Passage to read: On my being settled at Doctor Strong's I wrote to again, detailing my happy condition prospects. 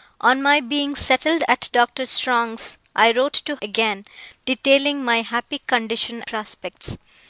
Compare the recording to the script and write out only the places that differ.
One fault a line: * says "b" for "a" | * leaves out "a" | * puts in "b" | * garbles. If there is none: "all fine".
all fine